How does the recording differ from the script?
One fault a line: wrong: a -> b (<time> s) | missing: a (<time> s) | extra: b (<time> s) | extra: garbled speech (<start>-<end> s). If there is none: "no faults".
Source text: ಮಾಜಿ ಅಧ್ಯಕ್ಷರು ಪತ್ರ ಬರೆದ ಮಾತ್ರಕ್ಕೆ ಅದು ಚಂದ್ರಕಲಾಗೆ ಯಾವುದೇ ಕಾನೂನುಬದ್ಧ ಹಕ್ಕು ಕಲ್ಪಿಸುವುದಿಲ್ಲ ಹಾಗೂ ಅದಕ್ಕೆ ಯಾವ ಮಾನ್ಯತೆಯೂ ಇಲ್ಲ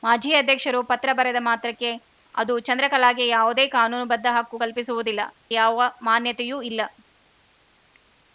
missing: ಹಾಗೂ ಅದಕ್ಕೆ (5.2 s)